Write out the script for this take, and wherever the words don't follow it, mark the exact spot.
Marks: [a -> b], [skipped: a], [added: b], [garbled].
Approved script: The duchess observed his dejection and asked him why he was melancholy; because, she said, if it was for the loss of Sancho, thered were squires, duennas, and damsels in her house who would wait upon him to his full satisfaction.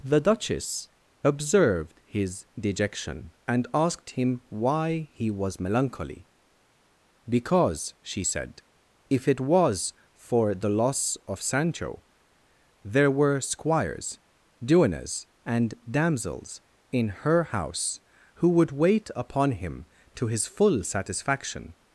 The duchess observed his dejection and asked him why he was melancholy; because, she said, if it was for the loss of Sancho, [thered -> there] were squires, duennas, and damsels in her house who would wait upon him to his full satisfaction.